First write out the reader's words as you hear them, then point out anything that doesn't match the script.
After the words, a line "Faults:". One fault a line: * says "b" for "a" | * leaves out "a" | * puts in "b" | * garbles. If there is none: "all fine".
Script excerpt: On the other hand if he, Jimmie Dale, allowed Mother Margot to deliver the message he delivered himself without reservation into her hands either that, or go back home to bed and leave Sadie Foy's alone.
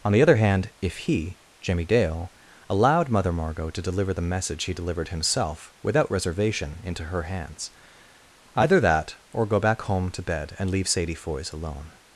On the other hand if he, Jimmie Dale, allowed Mother Margot to deliver the message he delivered himself without reservation into her hands either that, or go back home to bed and leave Sadie Foy's alone.
Faults:
all fine